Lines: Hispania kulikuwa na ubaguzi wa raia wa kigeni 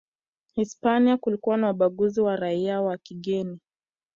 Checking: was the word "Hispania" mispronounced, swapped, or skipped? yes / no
no